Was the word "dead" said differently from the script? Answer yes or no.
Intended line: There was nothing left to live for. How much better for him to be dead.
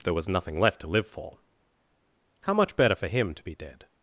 no